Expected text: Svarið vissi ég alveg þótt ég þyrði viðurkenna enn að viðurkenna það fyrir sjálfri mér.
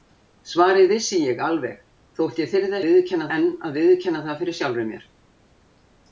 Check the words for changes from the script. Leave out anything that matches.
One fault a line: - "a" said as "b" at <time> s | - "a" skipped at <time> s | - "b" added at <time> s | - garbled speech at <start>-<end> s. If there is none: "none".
none